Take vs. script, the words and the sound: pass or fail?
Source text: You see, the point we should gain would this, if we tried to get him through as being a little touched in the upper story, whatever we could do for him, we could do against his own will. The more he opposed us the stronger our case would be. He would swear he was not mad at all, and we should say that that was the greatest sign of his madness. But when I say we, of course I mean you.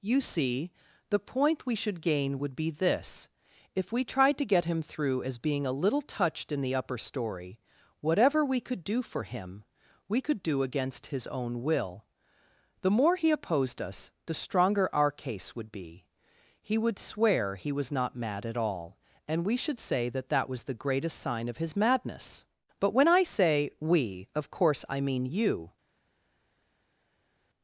fail